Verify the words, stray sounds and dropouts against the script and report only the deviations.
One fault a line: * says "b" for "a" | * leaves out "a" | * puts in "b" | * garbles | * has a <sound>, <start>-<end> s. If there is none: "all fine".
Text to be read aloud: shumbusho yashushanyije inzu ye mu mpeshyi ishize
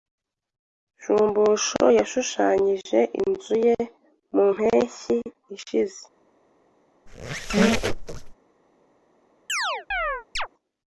* has a squeak, 7.1-8.3 s
* has a chirp, 9.5-10.5 s